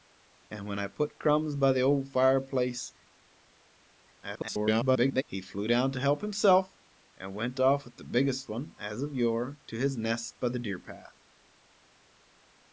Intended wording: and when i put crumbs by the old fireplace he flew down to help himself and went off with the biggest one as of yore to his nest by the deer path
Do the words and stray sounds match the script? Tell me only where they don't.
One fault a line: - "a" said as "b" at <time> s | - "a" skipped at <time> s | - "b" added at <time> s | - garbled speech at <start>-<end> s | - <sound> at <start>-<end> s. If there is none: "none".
- garbled speech at 4.2-5.2 s